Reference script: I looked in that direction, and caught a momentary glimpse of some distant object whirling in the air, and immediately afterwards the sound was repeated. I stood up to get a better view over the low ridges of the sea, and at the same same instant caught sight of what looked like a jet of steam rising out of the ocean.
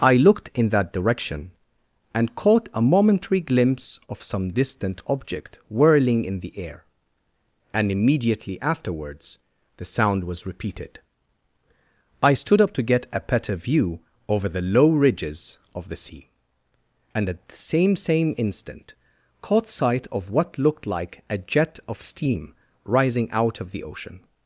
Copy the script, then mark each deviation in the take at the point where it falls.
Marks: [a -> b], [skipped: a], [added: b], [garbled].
I looked in that direction, and caught a momentary glimpse of some distant object whirling in the air, and immediately afterwards the sound was repeated. I stood up to get a better view over the low ridges of the sea, and at the same same instant caught sight of what looked like a jet of steam rising out of the ocean.